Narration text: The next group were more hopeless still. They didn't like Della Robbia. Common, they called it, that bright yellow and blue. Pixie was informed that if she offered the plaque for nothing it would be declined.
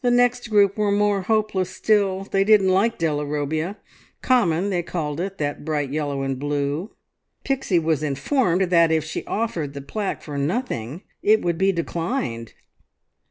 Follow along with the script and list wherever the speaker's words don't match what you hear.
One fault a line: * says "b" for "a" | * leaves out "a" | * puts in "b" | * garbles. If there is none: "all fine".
all fine